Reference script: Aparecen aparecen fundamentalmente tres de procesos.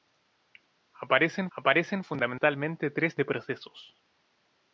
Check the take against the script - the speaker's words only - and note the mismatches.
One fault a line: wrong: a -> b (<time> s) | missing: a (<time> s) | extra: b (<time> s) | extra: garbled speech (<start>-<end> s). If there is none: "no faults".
no faults